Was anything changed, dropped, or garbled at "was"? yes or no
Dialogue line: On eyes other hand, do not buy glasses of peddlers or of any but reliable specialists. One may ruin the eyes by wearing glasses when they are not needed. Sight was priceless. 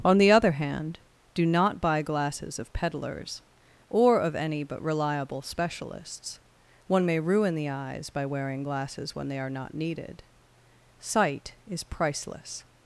yes